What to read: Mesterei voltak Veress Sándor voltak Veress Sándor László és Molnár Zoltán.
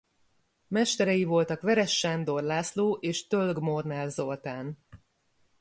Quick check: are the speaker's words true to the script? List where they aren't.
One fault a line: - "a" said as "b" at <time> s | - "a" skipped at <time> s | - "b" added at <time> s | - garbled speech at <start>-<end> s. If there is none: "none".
- "voltak Veress Sándor" skipped at 2.4 s
- "Tölg" added at 3.3 s